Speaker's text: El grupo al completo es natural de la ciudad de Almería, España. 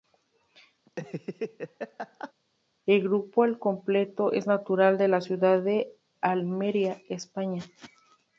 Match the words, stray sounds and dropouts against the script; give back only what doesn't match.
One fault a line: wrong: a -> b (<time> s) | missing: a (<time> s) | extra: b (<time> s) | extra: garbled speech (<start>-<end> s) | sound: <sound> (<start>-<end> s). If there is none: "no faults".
sound: laugh (0.9-2.3 s)